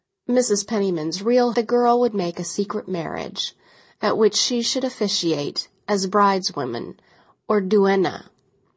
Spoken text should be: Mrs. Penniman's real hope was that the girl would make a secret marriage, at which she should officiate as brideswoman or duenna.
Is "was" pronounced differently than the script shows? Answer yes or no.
yes